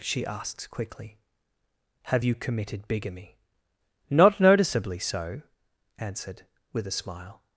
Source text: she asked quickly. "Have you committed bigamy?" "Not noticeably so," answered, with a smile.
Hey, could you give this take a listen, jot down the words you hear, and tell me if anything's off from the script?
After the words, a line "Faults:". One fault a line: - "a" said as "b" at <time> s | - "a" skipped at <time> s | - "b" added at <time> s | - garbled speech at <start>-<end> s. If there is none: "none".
she asked quickly. "Have you committed bigamy?" "Not noticeably so," answered, with a smile.
Faults:
none